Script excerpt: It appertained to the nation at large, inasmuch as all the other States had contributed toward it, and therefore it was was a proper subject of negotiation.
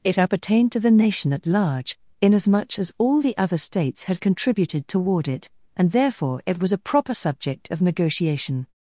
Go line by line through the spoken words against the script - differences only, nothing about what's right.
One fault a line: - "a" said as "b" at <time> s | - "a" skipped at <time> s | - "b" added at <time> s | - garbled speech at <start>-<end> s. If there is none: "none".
- "was" skipped at 6.7 s